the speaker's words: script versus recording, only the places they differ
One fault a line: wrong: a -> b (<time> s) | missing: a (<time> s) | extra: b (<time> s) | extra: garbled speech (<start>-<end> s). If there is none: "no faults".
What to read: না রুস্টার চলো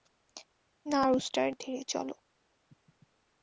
extra: ধীরে (1.6 s)